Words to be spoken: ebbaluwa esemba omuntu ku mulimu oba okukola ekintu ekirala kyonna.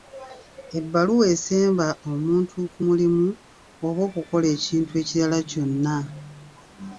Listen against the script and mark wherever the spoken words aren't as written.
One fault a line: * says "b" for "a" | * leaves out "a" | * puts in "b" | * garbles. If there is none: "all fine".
all fine